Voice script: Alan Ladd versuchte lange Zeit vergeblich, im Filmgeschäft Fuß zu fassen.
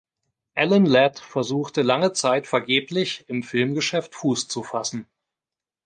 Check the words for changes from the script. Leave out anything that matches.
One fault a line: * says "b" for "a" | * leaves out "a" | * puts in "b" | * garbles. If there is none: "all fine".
all fine